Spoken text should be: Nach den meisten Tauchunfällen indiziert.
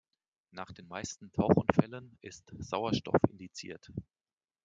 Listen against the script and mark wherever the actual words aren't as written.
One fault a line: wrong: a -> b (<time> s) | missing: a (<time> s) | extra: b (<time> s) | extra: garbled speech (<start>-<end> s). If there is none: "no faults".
extra: ist Sauerstoff (2.2 s)